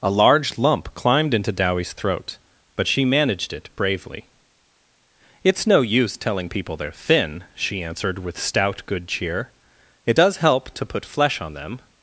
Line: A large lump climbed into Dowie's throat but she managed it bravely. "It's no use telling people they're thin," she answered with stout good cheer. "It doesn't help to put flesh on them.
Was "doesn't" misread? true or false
true